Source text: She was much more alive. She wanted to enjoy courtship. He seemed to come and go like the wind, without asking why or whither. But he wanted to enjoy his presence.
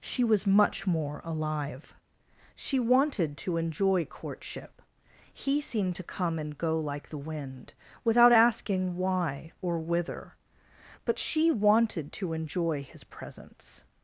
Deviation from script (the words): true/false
true